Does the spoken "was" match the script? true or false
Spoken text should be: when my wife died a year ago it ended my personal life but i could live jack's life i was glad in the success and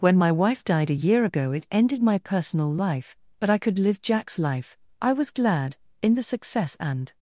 true